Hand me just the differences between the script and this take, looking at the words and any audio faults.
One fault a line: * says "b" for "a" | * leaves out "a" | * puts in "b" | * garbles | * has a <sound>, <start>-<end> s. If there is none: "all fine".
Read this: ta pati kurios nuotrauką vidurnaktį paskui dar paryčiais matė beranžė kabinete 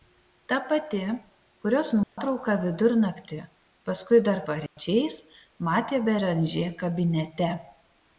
* has a dropout, 2.0-2.2 s
* has a dropout, 4.7-4.8 s